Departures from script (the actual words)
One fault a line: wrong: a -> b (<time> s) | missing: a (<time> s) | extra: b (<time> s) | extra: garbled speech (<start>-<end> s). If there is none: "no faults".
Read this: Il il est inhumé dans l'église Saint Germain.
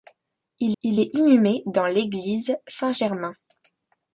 no faults